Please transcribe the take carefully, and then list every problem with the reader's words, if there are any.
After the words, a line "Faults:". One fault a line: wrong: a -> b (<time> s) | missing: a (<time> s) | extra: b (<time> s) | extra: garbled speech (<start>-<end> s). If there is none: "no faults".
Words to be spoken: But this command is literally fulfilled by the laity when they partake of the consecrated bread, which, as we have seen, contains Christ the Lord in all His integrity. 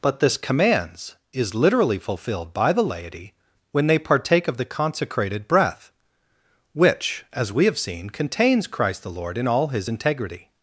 But this commands is literally fulfilled by the laity when they partake of the consecrated breath, which, as we have seen, contains Christ the Lord in all His integrity.
Faults:
wrong: command -> commands (0.4 s)
wrong: bread -> breath (5.5 s)